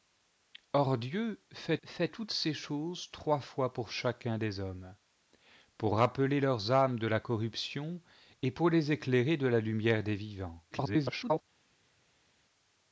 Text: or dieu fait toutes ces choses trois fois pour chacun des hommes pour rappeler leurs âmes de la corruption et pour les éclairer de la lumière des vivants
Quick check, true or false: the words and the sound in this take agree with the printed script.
false